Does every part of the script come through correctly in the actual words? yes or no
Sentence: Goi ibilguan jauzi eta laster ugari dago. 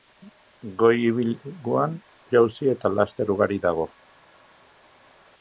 yes